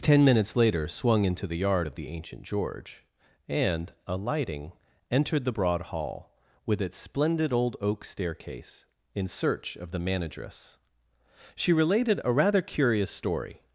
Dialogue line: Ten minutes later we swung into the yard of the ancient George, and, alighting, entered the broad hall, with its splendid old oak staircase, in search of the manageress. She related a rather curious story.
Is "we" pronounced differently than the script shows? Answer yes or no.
yes